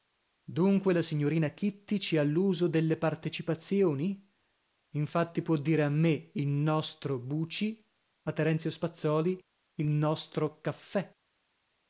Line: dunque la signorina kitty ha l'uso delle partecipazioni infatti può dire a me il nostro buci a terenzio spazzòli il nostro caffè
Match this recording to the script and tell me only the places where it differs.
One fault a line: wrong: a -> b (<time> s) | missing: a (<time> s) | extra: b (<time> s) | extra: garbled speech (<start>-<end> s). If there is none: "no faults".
extra: ci (2.0 s)